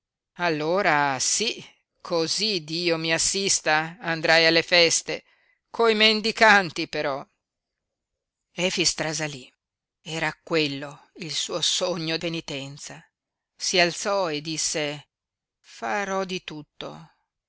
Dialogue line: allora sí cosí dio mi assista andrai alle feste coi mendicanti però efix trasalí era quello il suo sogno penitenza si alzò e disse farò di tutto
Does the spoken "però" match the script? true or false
true